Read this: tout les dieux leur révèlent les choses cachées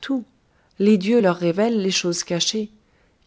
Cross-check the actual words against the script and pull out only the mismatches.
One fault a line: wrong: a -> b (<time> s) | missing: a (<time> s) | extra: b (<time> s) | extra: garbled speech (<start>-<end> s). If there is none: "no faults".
no faults